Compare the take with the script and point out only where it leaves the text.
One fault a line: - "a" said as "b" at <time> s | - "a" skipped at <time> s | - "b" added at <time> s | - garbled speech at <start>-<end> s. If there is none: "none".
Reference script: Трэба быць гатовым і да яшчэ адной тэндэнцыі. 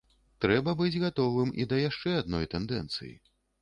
none